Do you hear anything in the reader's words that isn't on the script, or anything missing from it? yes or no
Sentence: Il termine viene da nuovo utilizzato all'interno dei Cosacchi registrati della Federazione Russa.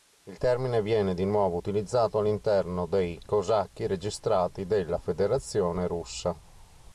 yes